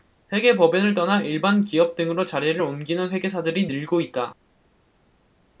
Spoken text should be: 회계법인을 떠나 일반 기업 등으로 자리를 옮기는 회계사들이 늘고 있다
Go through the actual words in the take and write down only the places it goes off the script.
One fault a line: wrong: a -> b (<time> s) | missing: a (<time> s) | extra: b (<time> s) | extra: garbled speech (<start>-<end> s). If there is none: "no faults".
no faults